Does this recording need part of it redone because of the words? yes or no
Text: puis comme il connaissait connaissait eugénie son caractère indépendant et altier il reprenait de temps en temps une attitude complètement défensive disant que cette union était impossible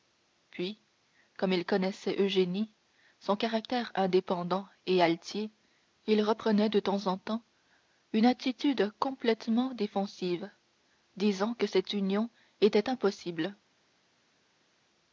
yes